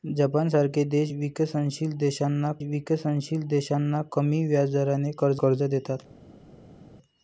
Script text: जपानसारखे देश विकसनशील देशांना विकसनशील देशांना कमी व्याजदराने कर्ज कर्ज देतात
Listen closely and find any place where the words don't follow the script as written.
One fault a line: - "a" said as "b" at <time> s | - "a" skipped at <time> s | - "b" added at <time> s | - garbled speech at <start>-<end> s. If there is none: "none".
none